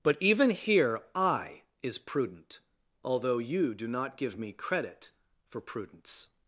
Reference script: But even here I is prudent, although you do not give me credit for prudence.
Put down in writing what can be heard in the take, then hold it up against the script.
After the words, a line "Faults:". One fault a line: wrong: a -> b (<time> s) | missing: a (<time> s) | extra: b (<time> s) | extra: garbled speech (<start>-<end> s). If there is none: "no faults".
But even here I is prudent, although you do not give me credit for prudence.
Faults:
no faults